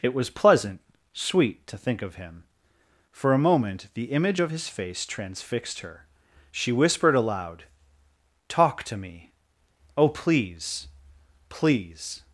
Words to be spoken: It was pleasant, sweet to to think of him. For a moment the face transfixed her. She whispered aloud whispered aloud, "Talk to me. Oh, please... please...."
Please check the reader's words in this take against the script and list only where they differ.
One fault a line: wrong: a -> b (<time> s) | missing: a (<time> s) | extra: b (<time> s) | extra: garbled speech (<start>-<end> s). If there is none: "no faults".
missing: to (1.8 s)
extra: image of his (4.0 s)
missing: whispered aloud (7.6 s)